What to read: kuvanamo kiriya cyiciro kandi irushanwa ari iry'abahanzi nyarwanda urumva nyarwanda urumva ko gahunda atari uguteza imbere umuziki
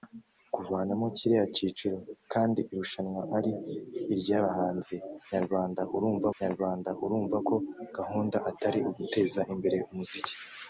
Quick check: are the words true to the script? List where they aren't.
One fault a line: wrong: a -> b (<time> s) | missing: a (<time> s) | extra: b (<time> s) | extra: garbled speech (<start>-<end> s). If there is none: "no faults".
no faults